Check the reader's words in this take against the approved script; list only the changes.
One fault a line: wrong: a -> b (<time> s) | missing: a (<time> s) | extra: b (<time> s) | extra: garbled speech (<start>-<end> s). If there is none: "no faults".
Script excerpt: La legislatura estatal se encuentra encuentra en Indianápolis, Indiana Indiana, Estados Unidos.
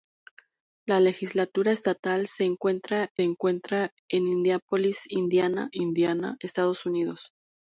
no faults